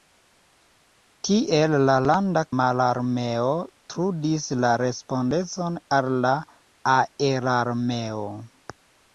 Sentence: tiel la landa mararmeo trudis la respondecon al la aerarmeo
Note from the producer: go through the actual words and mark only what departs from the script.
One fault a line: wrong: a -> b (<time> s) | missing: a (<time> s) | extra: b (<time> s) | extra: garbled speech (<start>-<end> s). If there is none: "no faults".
no faults